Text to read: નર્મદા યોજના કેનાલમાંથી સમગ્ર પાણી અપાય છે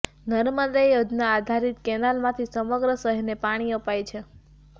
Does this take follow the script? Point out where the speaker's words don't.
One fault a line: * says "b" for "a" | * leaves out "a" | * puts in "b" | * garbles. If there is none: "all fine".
* puts in "આધારિત"
* puts in "શહેરને"